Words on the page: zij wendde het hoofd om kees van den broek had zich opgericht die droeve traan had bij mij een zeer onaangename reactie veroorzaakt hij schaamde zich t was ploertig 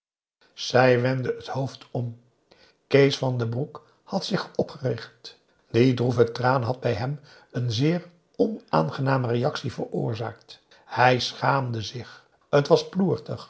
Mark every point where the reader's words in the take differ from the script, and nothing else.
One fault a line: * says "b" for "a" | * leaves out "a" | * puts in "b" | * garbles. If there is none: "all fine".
* says "hem" for "mij"